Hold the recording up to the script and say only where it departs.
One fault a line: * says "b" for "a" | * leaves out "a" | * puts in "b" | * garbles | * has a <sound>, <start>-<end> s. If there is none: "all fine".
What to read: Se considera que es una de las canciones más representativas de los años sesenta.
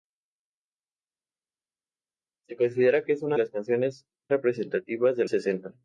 * leaves out "de"
* leaves out "más"
* leaves out "los años"